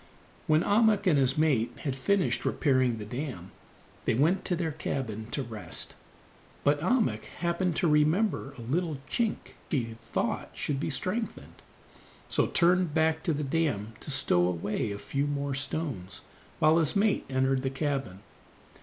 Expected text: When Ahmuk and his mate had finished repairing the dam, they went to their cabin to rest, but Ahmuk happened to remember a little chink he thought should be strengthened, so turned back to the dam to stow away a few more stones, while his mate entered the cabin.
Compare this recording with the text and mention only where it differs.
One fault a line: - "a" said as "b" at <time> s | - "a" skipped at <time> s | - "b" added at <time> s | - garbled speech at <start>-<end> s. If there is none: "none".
none